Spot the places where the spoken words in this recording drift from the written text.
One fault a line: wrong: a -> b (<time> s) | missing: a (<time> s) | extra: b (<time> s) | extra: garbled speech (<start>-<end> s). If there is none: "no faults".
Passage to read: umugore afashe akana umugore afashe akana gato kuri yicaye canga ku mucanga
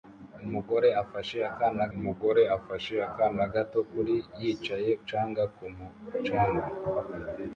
no faults